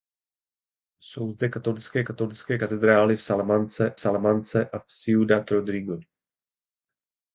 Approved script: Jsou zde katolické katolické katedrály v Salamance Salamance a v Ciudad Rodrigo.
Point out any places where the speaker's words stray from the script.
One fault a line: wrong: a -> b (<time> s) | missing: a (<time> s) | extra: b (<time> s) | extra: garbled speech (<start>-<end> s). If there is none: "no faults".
no faults